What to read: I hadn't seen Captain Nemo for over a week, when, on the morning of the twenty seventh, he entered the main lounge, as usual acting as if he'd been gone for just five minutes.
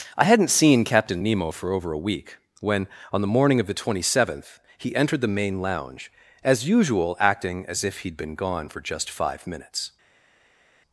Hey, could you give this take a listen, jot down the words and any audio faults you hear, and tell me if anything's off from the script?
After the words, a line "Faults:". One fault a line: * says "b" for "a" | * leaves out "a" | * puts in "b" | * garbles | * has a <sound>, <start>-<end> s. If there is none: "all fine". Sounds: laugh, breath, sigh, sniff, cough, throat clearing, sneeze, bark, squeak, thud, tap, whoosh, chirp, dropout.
I hadn't seen Captain Nemo for over a week, when, on the morning of the twenty seventh, he entered the main lounge, as usual acting as if he'd been gone for just five minutes.
Faults:
all fine